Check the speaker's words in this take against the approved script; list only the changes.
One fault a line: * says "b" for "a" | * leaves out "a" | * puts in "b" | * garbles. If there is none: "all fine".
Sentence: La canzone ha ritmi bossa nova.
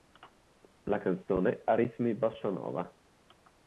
all fine